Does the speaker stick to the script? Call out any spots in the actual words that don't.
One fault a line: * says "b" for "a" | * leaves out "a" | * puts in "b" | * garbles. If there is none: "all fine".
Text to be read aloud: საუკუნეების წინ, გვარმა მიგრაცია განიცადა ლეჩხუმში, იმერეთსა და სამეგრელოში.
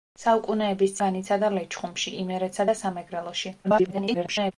* leaves out "წინ გვარმა მიგრაცია"
* garbles